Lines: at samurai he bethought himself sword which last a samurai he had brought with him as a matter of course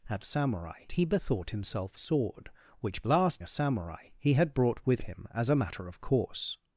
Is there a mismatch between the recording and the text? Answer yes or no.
no